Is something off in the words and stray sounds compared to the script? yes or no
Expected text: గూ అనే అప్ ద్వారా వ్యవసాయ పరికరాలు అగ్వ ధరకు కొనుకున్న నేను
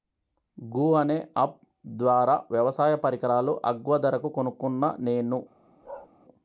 yes